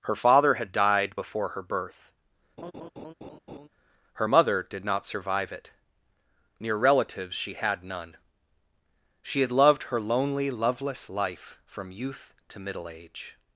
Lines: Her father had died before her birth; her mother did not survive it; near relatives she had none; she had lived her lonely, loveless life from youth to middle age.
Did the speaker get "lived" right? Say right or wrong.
wrong